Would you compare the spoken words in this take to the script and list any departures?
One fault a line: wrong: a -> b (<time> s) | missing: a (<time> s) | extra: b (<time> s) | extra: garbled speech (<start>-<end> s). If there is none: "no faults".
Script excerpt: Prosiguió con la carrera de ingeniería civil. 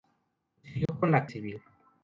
missing: carrera de ingeniería (1.3 s)